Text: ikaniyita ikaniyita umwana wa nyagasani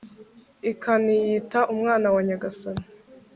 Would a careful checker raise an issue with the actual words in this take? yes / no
yes